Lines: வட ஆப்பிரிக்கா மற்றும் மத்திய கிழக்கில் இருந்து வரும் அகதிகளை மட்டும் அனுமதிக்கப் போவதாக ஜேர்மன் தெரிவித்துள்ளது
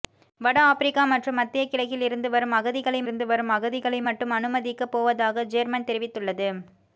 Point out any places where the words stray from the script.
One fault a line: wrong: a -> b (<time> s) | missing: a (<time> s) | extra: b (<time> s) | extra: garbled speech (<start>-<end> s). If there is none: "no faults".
extra: இருந்து வரும் அகதிகளை (3.0 s)